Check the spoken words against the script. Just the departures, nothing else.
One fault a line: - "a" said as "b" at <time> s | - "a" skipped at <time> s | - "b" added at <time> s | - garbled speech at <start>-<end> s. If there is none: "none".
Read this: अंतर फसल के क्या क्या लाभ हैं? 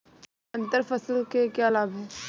- "क्या" skipped at 1.7 s